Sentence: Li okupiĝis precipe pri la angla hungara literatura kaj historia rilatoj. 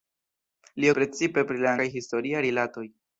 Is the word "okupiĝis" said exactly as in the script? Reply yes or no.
no